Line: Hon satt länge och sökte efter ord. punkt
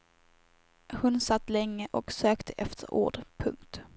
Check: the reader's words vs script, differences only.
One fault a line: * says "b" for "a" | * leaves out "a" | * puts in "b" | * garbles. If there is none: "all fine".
all fine